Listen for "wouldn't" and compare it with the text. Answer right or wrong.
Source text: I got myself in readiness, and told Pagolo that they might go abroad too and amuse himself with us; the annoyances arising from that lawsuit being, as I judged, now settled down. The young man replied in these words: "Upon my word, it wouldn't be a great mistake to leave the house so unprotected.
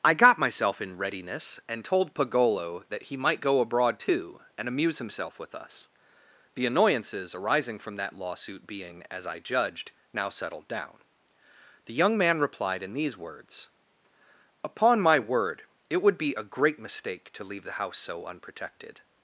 wrong